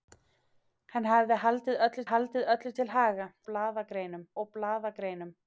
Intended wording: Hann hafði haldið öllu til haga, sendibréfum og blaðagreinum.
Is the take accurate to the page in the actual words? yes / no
no